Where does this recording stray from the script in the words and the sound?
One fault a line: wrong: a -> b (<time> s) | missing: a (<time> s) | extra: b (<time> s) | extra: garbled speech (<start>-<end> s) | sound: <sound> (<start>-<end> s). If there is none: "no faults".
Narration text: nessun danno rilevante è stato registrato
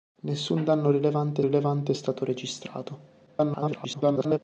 extra: rilevante (1.4 s)
extra: garbled speech (3.3-4.4 s)